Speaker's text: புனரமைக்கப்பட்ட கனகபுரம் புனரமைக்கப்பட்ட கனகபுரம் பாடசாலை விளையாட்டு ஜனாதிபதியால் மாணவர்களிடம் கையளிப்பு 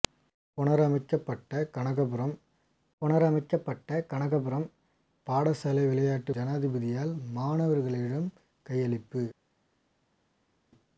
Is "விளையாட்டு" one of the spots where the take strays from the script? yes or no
no